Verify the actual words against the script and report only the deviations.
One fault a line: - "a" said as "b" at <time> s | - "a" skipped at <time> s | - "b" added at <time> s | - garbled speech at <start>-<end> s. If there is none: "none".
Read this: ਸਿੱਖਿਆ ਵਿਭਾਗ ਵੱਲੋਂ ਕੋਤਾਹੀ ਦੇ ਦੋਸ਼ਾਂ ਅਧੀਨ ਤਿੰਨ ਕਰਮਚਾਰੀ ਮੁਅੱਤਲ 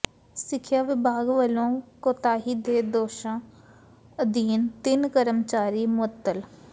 none